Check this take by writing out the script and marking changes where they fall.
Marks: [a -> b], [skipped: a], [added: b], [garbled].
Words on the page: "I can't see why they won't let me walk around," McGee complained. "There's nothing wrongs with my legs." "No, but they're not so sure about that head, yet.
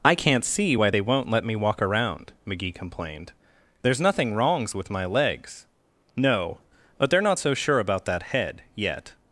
"I can't see why they won't let me walk around," McGee complained. "There's nothing wrongs with my legs." "No, but they're not so sure about that head, yet.